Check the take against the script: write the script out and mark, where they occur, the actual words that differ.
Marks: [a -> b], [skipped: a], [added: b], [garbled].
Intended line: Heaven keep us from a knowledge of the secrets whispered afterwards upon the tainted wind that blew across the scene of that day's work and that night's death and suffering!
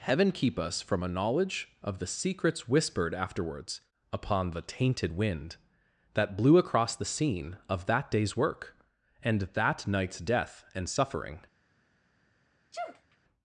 Heaven keep us from a knowledge of the secrets whispered afterwards upon the tainted wind that blew across the scene of that day's work and that night's death and suffering!